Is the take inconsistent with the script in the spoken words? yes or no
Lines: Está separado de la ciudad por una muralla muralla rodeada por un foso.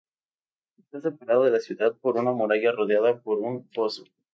yes